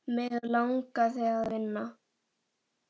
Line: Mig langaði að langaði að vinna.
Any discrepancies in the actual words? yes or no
yes